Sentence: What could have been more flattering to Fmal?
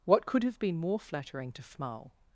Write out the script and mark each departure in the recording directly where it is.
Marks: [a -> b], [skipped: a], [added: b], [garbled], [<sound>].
What could have been more flattering to Fmal?